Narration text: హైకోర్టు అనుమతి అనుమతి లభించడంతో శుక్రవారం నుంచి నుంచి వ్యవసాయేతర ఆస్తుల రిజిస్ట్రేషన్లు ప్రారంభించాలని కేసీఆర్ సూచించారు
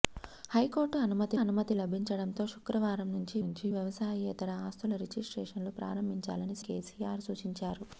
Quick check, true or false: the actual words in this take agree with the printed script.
true